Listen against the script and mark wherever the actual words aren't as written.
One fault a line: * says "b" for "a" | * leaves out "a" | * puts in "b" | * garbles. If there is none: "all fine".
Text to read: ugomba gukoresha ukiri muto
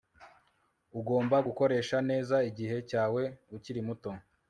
* puts in "neza igihe cyawe"